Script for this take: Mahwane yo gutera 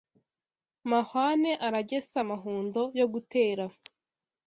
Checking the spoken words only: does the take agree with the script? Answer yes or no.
no